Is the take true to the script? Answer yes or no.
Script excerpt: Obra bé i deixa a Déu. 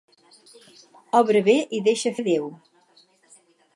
yes